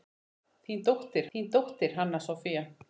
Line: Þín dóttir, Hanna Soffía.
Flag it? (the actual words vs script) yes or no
yes